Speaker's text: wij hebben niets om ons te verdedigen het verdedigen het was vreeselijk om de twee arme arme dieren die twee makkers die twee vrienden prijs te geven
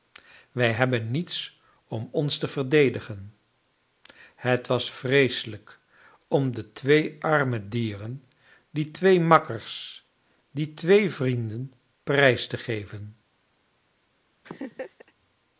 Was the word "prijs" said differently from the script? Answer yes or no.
no